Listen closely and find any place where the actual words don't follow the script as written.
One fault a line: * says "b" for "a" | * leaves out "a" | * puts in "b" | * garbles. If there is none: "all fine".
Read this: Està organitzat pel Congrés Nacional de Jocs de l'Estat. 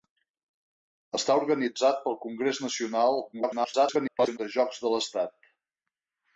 * garbles